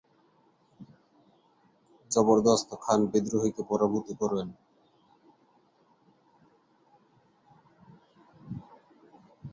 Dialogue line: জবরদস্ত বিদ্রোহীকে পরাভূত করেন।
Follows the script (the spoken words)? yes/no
no